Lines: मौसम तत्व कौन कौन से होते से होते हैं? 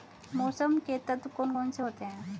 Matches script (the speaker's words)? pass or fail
fail